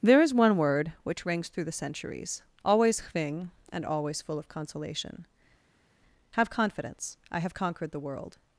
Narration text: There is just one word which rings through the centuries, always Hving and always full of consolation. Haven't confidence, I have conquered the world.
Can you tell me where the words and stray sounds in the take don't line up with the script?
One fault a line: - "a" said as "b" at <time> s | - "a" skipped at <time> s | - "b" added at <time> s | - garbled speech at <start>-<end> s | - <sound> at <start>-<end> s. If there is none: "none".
- "just" skipped at 0.3 s
- "Haven't" said as "Have" at 6.3 s